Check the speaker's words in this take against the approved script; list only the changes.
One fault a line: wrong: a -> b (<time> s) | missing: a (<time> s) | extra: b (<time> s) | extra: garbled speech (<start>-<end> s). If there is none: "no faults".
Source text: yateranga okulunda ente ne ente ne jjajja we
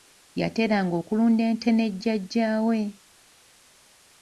missing: ente ne (1.9 s)